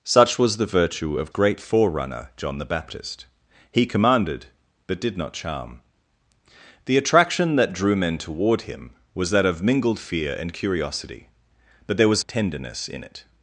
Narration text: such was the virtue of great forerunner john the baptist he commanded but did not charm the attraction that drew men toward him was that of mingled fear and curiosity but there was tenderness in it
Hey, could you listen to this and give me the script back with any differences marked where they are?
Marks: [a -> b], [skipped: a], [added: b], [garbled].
such was the virtue of great forerunner john the baptist he commanded but did not charm the attraction that drew men toward him was that of mingled fear and curiosity but there was tenderness in it